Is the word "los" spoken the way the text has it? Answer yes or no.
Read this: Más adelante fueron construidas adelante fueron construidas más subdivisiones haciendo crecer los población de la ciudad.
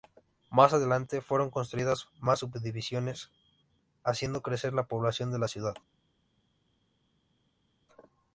no